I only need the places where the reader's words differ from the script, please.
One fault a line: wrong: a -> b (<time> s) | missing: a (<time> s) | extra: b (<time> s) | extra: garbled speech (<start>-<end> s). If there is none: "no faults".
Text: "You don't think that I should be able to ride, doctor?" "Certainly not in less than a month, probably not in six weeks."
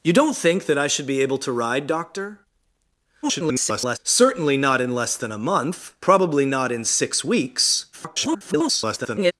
extra: garbled speech (3.2-4.0 s)
extra: garbled speech (7.9-9.3 s)